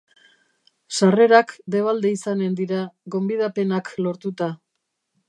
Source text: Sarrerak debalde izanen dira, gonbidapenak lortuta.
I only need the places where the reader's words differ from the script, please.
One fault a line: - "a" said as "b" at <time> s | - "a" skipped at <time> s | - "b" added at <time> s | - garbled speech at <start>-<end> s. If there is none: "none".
none